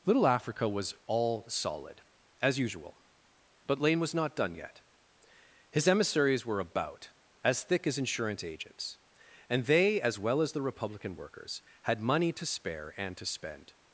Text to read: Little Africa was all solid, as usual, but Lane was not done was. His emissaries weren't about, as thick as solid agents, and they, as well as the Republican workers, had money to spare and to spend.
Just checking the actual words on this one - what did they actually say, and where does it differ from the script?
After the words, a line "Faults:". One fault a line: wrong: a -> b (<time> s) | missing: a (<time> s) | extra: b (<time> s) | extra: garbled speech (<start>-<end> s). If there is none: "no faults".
Little Africa was all solid, as usual, but Lane was not done yet. His emissaries were about, as thick as insurance agents, and they, as well as the Republican workers, had money to spare and to spend.
Faults:
wrong: was -> yet (4.5 s)
wrong: weren't -> were (6.5 s)
wrong: solid -> insurance (8.0 s)